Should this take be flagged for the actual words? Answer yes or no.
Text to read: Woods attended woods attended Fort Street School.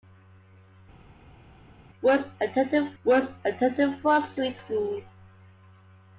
no